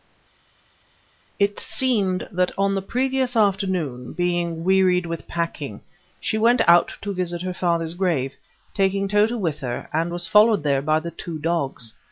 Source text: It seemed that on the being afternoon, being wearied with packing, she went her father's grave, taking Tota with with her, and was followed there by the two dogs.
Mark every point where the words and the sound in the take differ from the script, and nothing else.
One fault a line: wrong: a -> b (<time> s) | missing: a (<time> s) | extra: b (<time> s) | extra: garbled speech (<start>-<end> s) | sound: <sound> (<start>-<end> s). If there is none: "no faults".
wrong: being -> previous (2.8 s)
extra: out to visit (6.7 s)
missing: with (9.6 s)